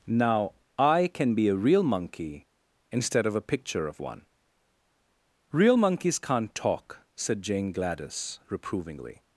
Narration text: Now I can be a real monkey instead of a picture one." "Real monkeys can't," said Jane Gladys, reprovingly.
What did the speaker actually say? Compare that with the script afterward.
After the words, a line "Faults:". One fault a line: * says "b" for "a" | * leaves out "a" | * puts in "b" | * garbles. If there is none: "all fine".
Now I can be a real monkey instead of a picture of one." "Real monkeys can't talk," said Jane Gladys, reprovingly.
Faults:
* puts in "of"
* puts in "talk"